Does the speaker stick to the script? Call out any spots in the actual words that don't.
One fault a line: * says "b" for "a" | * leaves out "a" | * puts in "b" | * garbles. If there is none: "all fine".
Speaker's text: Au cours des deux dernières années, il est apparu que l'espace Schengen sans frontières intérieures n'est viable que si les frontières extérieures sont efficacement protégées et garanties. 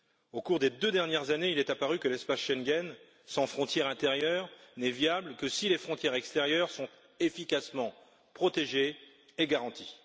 all fine